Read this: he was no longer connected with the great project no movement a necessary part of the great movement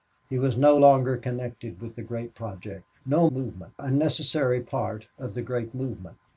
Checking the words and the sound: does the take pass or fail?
pass